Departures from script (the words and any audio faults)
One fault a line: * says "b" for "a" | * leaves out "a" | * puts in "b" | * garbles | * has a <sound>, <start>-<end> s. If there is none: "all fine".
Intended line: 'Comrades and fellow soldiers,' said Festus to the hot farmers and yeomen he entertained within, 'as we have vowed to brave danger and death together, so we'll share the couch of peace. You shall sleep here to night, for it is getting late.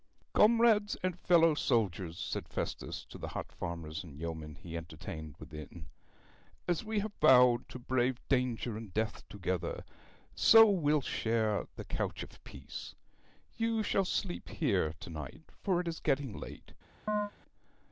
* has a chirp, 17.1-17.3 s